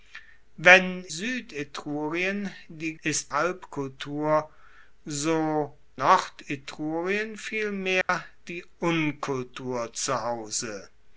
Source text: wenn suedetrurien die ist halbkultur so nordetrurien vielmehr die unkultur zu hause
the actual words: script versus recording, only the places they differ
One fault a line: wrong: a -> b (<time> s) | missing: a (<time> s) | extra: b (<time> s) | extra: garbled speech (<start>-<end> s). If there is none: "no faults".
no faults